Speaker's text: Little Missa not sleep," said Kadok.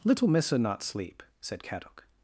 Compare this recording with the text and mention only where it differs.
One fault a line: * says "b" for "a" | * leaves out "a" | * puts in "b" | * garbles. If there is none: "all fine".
all fine